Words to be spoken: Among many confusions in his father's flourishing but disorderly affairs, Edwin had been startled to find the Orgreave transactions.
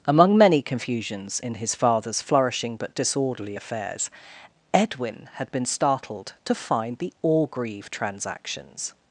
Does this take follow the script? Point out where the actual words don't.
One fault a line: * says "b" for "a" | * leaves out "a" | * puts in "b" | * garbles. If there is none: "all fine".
all fine